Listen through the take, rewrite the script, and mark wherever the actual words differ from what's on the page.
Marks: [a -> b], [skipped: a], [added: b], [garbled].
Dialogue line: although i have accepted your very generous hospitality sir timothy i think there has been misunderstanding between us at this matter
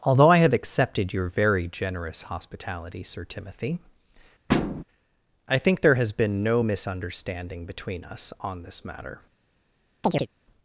although i have accepted your very generous hospitality sir timothy i think there has been [added: no] misunderstanding between us [at -> on] this matter